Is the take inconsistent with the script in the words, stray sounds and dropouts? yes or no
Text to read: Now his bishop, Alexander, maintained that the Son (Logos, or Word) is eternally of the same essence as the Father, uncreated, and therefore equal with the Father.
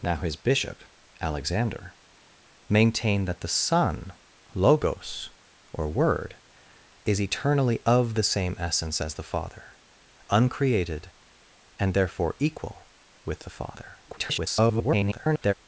yes